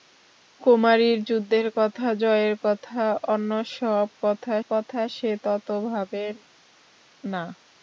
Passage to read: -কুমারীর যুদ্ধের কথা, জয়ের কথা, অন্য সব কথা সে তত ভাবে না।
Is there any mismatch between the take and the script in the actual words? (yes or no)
yes